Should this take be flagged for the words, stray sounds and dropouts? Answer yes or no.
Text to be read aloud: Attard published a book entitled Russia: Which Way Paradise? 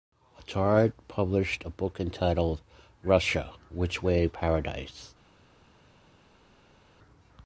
no